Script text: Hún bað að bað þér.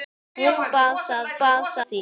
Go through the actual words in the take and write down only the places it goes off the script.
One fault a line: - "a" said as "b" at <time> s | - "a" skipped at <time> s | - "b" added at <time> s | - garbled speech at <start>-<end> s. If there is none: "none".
none